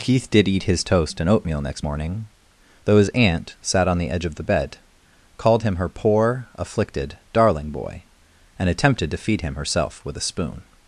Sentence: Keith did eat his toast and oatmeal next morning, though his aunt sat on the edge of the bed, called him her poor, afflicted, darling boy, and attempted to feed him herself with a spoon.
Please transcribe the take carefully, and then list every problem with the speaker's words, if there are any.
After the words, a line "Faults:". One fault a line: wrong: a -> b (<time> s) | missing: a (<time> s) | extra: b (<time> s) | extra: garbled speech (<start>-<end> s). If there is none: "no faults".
Keith did eat his toast and oatmeal next morning, though his aunt sat on the edge of the bed, called him her poor, afflicted, darling boy, and attempted to feed him herself with a spoon.
Faults:
no faults